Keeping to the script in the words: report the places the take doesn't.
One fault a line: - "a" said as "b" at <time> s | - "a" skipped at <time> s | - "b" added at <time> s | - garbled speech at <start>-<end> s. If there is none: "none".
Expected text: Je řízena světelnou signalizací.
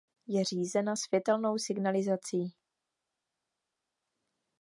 none